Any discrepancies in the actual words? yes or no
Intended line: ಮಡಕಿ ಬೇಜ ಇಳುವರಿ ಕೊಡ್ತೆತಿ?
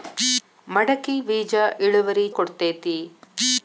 no